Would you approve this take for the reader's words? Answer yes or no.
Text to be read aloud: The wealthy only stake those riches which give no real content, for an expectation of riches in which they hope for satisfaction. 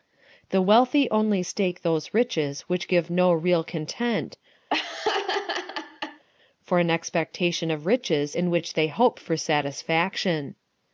yes